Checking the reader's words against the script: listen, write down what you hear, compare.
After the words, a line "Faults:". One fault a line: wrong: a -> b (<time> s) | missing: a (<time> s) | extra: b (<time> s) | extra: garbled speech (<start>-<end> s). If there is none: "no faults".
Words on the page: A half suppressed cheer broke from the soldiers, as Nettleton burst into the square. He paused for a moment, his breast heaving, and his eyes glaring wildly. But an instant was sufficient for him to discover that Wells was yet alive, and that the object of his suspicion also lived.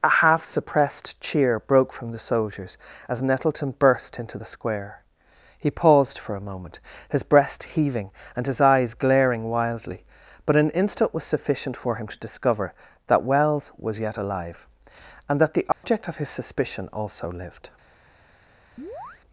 A half suppressed cheer broke from the soldiers, as Nettleton burst into the square. He paused for a moment, his breast heaving, and his eyes glaring wildly. But an instant was sufficient for him to discover that Wells was yet alive, and that the object of his suspicion also lived.
Faults:
no faults